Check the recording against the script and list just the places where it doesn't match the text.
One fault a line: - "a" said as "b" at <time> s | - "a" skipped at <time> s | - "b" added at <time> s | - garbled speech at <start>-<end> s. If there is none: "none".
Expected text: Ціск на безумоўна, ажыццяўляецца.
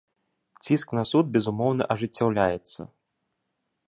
- "суд" added at 1.1 s